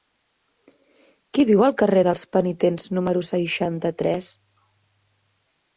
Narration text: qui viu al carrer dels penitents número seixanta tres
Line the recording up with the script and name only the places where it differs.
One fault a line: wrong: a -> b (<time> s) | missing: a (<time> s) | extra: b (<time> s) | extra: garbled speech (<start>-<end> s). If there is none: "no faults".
no faults